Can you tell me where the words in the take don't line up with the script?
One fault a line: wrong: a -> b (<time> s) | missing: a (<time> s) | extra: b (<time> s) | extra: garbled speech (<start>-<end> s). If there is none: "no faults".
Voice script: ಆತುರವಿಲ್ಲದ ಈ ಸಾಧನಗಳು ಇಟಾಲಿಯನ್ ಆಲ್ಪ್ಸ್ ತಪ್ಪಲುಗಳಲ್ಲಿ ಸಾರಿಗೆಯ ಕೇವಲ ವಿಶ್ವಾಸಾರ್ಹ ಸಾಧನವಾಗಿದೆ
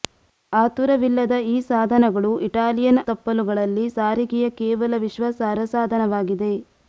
missing: ಆಲ್ಪ್ಸ್ (3.0 s)